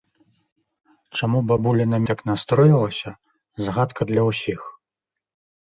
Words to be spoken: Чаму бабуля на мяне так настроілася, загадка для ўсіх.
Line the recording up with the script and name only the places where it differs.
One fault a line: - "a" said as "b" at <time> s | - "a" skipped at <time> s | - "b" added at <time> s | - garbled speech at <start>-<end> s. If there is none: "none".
- "мяне" skipped at 2.0 s